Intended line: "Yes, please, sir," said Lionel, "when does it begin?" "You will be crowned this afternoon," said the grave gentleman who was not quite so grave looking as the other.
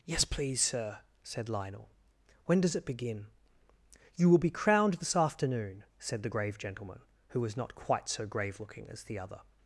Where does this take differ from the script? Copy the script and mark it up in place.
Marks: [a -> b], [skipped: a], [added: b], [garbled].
"Yes, please, sir," said Lionel, "when does it begin?" "You will be crowned this afternoon," said the grave gentleman who was not quite so grave looking as the other.